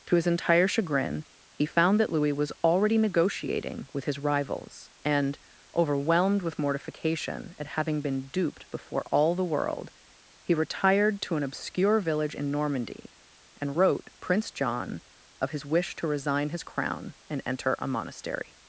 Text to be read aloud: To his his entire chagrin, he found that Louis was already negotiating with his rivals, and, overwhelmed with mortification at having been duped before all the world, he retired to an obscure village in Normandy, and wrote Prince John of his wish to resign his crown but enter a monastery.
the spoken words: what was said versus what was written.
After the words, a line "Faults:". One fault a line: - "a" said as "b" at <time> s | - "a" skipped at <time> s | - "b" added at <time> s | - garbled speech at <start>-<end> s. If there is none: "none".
To his entire chagrin, he found that Louis was already negotiating with his rivals, and, overwhelmed with mortification at having been duped before all the world, he retired to an obscure village in Normandy, and wrote Prince John of his wish to resign his crown and enter a monastery.
Faults:
- "his" skipped at 0.3 s
- "but" said as "and" at 17.3 s